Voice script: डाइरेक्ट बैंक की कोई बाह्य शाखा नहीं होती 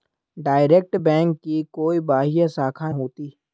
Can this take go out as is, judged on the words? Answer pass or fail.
fail